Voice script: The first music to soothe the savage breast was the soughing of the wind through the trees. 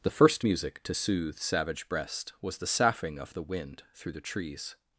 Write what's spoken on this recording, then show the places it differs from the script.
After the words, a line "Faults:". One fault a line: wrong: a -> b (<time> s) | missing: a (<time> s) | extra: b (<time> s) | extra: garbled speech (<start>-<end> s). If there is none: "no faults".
The first music to soothe savage breast was the soughing of the wind through the trees.
Faults:
missing: the (1.4 s)